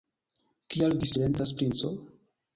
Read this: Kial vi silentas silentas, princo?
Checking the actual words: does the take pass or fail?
fail